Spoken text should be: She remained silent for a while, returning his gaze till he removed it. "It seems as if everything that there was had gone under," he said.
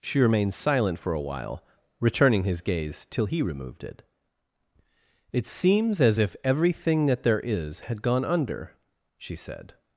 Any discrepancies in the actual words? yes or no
yes